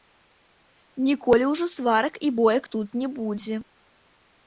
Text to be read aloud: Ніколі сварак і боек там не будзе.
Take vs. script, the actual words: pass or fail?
fail